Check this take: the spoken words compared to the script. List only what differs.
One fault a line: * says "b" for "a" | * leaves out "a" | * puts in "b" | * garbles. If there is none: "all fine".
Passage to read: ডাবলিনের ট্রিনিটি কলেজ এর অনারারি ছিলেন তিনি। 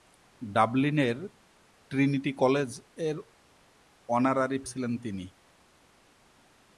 all fine